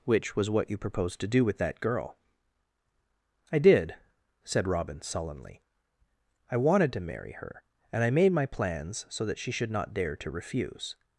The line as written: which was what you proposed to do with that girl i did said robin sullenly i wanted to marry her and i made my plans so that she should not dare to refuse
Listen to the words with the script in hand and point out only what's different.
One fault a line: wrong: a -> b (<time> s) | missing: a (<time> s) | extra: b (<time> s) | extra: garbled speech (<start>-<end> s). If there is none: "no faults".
no faults